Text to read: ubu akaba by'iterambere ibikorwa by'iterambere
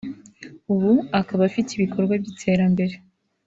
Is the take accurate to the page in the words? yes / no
no